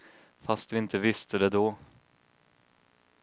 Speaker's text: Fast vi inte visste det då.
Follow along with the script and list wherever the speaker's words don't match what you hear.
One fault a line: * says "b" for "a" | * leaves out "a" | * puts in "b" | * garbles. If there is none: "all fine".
all fine